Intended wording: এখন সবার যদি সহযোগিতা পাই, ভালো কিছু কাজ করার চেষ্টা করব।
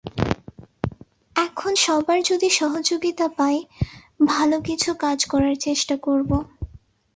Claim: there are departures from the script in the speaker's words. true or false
false